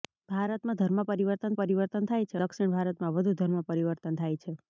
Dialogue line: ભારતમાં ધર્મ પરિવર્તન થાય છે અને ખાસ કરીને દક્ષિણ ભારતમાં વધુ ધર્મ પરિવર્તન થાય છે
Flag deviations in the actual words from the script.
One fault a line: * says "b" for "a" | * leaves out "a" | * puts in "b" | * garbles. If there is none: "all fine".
* puts in "પરિવર્તન"
* leaves out "અને ખાસ કરીને"